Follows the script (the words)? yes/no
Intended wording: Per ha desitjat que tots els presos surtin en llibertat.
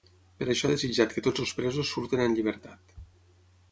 no